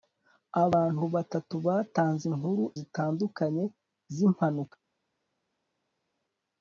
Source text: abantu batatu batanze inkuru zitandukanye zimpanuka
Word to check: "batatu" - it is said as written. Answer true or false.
true